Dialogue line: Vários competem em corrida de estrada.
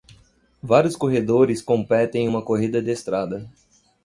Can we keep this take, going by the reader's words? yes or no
no